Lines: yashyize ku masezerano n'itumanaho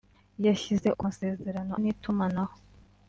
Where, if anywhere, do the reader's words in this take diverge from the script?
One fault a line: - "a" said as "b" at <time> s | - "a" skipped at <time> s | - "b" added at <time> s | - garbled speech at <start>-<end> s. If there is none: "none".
none